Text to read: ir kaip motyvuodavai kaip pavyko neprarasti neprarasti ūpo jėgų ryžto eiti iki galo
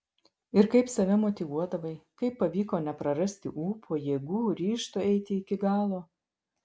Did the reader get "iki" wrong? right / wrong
right